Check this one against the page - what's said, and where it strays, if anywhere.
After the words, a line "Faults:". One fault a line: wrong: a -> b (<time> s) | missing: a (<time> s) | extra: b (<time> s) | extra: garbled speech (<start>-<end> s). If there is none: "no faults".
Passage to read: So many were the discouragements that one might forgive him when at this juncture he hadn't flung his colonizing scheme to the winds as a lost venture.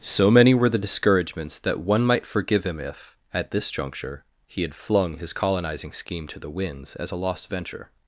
So many were the discouragements that one might forgive him if at this juncture he had flung his colonizing scheme to the winds as a lost venture.
Faults:
wrong: when -> if (2.8 s)
wrong: hadn't -> had (4.6 s)